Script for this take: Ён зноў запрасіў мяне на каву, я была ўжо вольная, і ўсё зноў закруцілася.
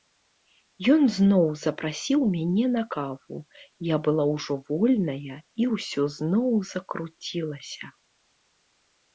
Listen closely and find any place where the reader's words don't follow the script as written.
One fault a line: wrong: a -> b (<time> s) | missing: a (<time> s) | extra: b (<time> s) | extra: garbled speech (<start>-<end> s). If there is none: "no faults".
no faults